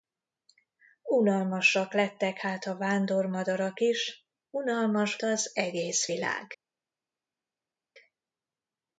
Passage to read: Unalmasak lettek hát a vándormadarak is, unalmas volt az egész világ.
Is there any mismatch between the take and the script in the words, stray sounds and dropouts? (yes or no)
yes